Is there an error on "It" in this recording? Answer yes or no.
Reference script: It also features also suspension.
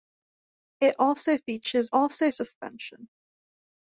no